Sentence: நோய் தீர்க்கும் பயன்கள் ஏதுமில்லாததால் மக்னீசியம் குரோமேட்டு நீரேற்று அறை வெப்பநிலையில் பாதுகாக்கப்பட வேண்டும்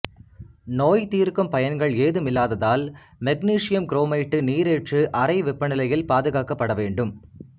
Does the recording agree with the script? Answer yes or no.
yes